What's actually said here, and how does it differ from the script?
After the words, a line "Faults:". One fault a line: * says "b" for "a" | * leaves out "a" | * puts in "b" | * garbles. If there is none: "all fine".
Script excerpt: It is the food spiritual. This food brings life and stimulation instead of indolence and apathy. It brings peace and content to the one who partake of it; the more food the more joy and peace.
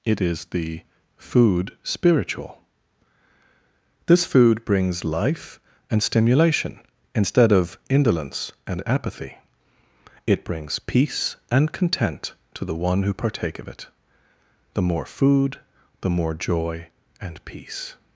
It is the food spiritual. This food brings life and stimulation instead of indolence and apathy. It brings peace and content to the one who partake of it; the more food the more joy and peace.
Faults:
all fine